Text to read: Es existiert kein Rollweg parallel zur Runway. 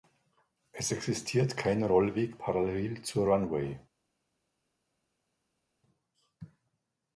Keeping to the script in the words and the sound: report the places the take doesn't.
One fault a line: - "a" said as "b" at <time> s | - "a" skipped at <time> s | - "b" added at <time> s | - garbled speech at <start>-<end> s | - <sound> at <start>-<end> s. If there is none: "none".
none